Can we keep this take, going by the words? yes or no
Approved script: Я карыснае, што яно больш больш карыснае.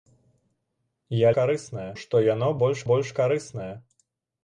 yes